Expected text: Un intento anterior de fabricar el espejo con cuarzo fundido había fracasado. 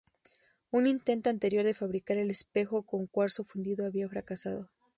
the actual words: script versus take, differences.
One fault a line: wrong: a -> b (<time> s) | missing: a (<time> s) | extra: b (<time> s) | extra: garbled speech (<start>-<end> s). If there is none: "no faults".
no faults